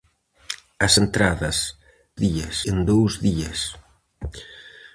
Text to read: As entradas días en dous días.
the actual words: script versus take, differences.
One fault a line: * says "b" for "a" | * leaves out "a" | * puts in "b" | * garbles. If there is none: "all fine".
all fine